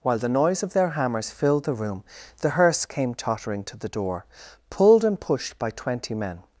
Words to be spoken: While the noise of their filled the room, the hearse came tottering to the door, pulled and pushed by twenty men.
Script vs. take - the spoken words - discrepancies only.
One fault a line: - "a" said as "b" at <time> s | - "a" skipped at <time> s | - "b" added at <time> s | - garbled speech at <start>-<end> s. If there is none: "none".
- "hammers" added at 0.9 s